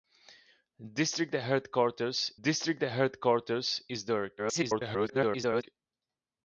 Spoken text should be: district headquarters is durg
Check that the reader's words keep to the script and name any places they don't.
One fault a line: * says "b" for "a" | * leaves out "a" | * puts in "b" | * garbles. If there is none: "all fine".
* puts in "district headquarters"
* garbles